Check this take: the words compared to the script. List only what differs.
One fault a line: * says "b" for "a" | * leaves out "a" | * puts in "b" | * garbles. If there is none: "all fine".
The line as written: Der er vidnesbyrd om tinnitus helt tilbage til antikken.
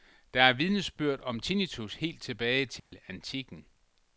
all fine